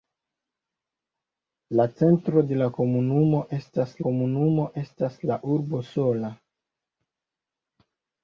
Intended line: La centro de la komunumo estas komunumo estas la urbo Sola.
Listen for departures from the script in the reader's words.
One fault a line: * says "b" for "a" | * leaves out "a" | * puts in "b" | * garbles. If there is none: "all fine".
all fine